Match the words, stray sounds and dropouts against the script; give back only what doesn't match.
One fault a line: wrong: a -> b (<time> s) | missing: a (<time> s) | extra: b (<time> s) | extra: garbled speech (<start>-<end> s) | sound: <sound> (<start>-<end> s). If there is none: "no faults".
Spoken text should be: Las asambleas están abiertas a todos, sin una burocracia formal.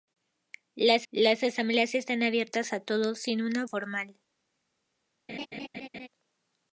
extra: las (1.1 s)
missing: burocracia (3.7 s)
sound: laugh (5.3-6.1 s)